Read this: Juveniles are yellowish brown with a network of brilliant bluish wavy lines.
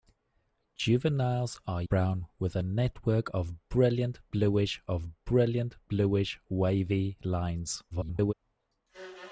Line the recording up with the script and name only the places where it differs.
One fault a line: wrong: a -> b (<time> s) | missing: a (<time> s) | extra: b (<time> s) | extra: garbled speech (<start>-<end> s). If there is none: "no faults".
missing: yellowish (1.8 s)
extra: of brilliant bluish (4.9 s)
extra: garbled speech (7.9-8.3 s)